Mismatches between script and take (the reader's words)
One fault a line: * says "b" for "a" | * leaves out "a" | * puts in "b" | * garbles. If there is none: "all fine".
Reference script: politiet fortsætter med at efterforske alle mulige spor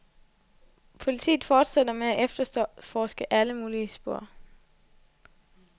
all fine